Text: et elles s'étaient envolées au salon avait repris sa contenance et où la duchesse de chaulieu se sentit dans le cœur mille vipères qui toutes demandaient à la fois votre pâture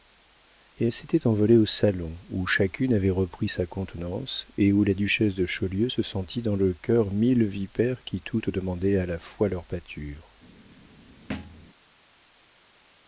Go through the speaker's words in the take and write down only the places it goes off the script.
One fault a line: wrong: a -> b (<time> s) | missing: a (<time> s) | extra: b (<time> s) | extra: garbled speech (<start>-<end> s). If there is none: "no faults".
extra: où chacune (2.3 s)
wrong: votre -> leur (9.5 s)